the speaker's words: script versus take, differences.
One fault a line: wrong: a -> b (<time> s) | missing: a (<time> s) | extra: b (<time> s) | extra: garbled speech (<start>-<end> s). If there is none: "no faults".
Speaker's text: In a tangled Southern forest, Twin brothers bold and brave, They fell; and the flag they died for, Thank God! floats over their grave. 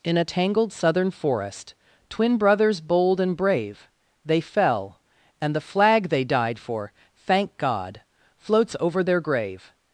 no faults